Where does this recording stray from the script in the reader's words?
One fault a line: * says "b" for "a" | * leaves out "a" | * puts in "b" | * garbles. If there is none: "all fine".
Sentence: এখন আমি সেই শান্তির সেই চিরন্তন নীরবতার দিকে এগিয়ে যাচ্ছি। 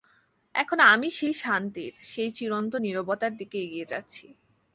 all fine